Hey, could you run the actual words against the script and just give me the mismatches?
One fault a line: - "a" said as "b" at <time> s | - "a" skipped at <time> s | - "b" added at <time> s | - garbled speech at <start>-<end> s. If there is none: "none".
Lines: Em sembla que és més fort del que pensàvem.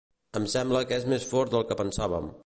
none